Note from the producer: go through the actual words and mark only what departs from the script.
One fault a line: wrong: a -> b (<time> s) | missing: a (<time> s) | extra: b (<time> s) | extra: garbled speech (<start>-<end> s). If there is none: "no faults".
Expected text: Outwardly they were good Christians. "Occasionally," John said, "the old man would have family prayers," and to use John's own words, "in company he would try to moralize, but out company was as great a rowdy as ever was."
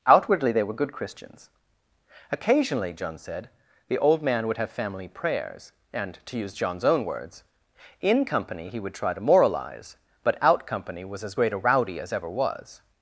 no faults